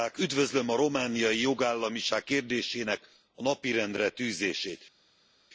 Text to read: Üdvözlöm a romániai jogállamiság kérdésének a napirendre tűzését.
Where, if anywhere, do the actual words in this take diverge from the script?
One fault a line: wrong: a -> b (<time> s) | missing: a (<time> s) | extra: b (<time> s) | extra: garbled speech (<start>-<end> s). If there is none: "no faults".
no faults